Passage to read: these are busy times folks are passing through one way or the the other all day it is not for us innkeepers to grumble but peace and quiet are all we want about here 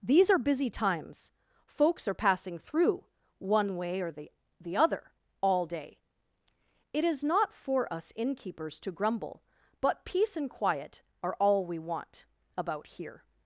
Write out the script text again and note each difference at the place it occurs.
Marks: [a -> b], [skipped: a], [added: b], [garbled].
these are busy times folks are passing through one way or the the other all day it is not for us innkeepers to grumble but peace and quiet are all we want about here